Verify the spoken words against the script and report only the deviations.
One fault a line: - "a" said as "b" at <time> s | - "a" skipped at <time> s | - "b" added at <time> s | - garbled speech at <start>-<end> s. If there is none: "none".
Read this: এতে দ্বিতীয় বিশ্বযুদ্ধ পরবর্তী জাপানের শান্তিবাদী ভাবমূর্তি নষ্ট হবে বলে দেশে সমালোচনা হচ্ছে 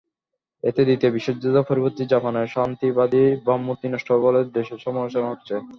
none